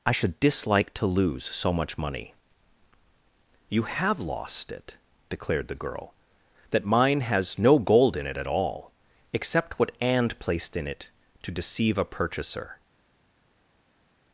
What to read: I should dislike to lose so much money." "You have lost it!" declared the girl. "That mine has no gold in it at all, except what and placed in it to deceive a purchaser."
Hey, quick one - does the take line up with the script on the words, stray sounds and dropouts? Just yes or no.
yes